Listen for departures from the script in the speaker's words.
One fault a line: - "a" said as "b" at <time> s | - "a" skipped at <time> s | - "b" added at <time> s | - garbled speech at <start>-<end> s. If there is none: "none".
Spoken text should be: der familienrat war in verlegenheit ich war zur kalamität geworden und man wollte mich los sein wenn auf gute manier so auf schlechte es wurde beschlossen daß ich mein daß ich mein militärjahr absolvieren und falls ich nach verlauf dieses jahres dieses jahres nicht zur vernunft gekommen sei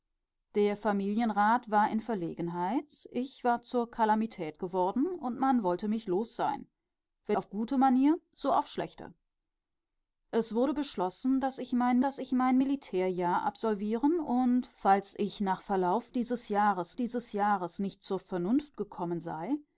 none